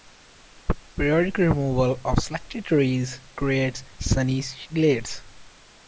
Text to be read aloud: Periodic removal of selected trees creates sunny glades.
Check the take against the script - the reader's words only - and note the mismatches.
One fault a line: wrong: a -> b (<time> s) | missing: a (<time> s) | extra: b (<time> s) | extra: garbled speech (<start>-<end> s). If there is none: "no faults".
no faults